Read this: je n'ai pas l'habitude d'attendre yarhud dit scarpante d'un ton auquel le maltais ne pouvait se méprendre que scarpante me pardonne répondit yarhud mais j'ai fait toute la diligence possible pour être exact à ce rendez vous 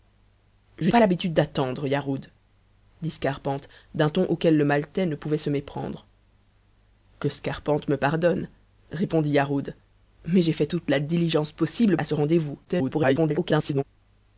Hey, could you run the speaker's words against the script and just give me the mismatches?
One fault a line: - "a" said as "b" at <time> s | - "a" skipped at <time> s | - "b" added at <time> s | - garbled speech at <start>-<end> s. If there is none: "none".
- "n'ai" skipped at 0.9 s
- "pour être exact" skipped at 12.0 s
- garbled speech at 12.6-13.8 s